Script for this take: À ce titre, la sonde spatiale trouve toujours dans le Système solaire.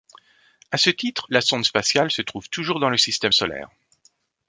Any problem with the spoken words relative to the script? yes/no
yes